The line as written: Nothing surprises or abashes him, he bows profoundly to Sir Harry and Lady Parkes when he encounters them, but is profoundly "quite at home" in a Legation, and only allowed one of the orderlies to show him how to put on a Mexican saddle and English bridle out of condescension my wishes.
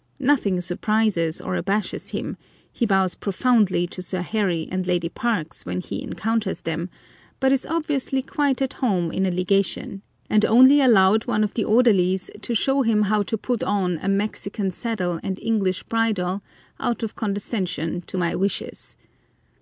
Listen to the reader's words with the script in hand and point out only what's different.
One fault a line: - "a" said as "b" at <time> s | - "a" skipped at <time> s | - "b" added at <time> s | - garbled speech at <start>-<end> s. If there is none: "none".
- "profoundly" said as "obviously" at 7.7 s
- "to" added at 18.1 s